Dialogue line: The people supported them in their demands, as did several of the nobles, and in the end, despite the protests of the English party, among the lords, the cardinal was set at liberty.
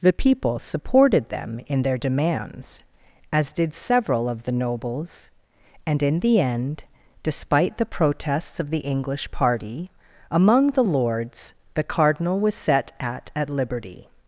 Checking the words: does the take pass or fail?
fail